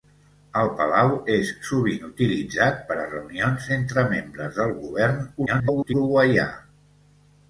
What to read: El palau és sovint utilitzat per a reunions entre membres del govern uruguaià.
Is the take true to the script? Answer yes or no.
no